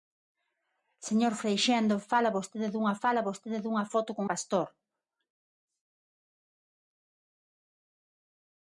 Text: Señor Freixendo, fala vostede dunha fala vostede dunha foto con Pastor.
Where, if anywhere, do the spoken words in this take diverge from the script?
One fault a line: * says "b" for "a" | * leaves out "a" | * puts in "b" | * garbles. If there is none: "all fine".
all fine